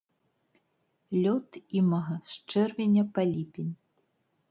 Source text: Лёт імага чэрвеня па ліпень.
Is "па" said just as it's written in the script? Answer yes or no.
yes